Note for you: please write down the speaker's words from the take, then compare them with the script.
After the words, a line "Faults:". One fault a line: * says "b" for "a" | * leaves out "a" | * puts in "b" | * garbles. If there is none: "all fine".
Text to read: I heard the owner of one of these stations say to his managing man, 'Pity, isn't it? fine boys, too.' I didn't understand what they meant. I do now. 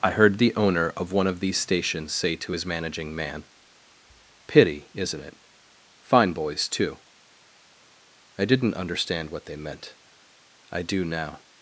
I heard the owner of one of these stations say to his managing man, 'Pity, isn't it? fine boys, too.' I didn't understand what they meant. I do now.
Faults:
all fine